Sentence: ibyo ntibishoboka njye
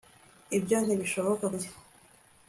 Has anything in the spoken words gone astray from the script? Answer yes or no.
no